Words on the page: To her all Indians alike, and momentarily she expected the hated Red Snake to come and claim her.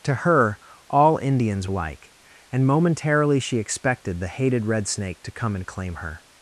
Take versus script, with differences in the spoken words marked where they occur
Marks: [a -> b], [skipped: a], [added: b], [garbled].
To her all Indians alike, and momentarily she expected the hated Red Snake to come and claim her.